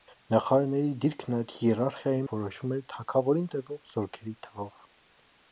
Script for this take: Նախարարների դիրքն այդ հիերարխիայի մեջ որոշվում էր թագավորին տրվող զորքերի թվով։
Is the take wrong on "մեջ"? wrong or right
wrong